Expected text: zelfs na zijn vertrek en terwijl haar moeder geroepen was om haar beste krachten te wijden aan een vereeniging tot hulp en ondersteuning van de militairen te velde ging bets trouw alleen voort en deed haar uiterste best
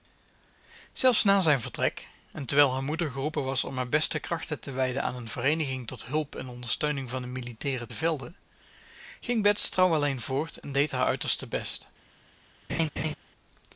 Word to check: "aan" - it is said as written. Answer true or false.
true